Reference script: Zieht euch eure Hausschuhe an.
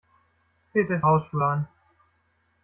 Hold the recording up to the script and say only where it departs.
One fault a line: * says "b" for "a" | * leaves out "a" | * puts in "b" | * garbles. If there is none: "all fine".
* leaves out "eure"